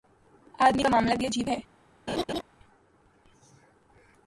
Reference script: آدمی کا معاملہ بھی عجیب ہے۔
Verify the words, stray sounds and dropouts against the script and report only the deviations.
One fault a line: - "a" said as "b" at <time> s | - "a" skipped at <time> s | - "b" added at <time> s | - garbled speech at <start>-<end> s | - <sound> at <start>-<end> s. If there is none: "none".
- laugh at 2.1-2.4 s